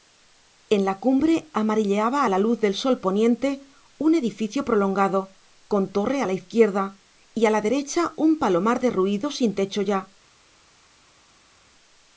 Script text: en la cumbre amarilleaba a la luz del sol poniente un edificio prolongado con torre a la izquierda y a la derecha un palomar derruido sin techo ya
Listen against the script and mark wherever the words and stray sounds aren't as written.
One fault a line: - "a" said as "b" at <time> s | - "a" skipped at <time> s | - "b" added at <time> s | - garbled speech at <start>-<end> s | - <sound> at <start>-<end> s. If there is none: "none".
none